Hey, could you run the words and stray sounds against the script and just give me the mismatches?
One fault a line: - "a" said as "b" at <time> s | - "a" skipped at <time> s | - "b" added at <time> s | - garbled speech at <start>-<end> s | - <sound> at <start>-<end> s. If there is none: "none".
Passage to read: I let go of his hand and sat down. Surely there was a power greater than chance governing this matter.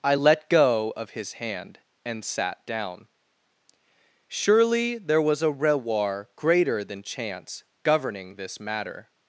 - "power" said as "rewar" at 5.5 s